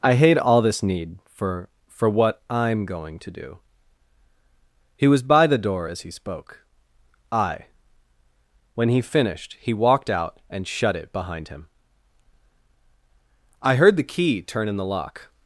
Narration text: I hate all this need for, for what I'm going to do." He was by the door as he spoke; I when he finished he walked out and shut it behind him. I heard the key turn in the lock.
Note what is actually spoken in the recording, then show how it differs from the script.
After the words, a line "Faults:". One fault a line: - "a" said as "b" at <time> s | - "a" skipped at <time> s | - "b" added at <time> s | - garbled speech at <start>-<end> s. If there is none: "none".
I hate all this need for, for what I'm going to do." He was by the door as he spoke; I when he finished he walked out and shut it behind him. I heard the key turn in the lock.
Faults:
none